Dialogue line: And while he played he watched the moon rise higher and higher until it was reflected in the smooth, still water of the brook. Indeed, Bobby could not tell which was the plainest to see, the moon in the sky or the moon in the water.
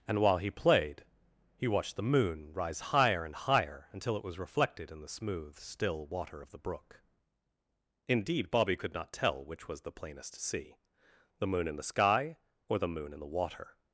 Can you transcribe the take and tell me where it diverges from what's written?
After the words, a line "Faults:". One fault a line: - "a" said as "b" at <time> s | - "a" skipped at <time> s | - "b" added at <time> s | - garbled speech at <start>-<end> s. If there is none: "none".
And while he played he watched the moon rise higher and higher until it was reflected in the smooth, still water of the brook. Indeed, Bobby could not tell which was the plainest to see, the moon in the sky or the moon in the water.
Faults:
none